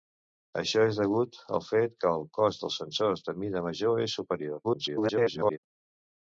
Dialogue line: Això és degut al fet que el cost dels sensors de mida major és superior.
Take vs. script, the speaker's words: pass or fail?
fail